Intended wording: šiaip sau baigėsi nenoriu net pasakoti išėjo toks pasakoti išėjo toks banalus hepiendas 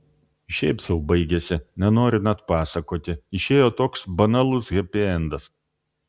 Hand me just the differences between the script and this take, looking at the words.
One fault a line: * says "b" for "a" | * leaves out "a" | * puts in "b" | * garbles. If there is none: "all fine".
* leaves out "pasakoti išėjo toks"